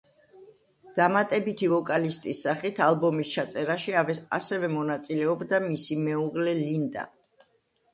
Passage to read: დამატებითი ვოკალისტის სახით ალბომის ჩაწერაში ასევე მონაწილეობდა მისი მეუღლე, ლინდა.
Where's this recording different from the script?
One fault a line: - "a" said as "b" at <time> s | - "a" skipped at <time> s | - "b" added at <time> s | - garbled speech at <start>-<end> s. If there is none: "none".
none